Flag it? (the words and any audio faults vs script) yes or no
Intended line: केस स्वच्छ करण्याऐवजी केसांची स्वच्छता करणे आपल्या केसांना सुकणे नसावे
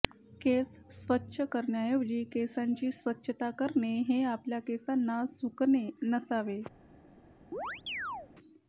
yes